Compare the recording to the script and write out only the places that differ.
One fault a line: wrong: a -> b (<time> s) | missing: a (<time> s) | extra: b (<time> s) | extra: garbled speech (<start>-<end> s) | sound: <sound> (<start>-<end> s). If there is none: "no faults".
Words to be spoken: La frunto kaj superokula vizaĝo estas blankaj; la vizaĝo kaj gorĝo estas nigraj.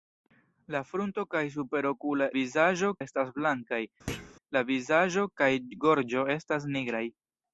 sound: thud (4.1-4.3 s)